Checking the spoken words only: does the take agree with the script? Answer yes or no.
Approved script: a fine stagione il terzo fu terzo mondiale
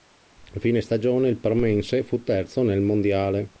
no